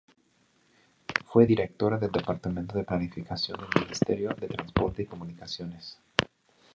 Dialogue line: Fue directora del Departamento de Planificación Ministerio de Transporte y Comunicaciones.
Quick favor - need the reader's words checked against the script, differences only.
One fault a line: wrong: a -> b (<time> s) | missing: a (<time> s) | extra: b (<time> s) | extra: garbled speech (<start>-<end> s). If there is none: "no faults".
extra: del (3.6 s)